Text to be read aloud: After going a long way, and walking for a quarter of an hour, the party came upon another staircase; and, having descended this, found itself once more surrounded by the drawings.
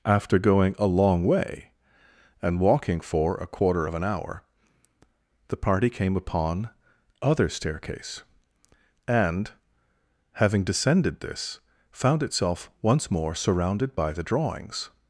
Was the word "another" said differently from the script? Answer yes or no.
yes